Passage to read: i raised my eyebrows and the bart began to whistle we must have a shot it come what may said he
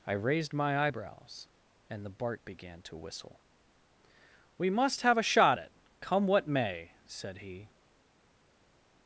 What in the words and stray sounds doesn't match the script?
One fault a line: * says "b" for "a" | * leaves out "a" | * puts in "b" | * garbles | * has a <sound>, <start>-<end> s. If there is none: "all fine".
all fine